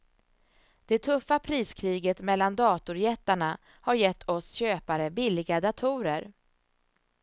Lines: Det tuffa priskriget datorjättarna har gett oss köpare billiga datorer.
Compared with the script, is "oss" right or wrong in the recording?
right